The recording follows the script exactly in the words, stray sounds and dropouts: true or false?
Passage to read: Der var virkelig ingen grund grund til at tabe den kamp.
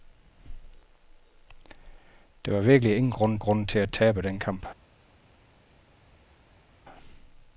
true